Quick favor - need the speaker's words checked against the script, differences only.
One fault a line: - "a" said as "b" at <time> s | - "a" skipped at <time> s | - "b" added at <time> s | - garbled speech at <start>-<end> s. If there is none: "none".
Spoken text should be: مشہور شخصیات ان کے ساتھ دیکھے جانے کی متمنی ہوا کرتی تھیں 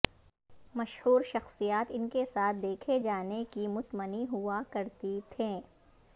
none